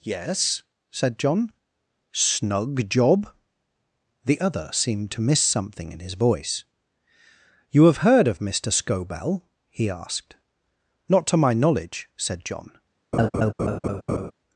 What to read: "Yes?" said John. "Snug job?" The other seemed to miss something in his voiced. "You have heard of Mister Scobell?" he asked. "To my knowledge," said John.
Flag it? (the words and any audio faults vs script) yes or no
yes